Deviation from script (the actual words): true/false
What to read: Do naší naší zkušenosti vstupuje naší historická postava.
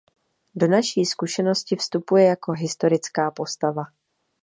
true